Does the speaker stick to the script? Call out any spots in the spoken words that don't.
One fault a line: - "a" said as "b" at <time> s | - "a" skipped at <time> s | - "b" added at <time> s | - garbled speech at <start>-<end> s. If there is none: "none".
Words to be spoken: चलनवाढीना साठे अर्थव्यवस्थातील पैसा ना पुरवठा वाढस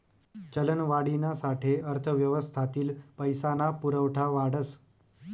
none